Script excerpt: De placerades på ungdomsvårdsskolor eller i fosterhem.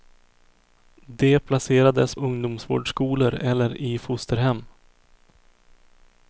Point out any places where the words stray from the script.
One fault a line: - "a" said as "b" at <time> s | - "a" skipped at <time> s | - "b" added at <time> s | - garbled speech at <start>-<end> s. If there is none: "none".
- "på" skipped at 2.1 s